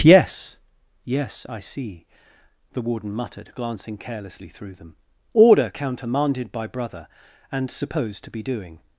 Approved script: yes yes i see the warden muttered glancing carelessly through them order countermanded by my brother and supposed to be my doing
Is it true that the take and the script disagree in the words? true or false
true